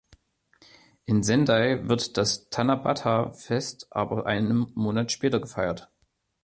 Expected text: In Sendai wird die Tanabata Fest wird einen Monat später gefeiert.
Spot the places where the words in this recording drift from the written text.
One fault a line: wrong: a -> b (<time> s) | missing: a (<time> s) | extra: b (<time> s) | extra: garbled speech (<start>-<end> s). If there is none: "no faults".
wrong: die -> das (2.2 s)
wrong: wird -> aber (3.9 s)